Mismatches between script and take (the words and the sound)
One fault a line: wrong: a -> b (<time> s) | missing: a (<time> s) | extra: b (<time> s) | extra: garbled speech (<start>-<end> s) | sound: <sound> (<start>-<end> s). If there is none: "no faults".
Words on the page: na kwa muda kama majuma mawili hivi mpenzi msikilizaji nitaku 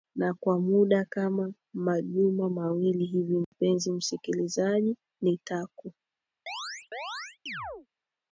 sound: dropout (3.4-3.5 s)
sound: chirp (6.5-7.9 s)